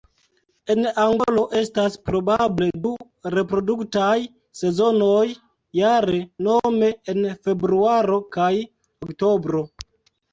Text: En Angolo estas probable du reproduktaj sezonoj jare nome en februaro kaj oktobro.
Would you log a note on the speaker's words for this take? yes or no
no